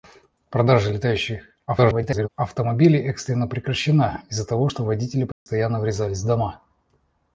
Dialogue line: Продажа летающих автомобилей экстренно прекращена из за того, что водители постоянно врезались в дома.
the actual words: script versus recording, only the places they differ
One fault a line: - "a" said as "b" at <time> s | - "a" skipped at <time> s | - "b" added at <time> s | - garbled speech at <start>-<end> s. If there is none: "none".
- garbled speech at 1.7-2.3 s